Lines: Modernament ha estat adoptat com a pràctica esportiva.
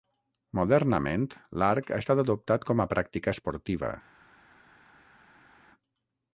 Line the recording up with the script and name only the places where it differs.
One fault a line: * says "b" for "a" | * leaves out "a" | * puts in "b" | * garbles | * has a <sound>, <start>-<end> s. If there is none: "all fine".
* puts in "l'arc"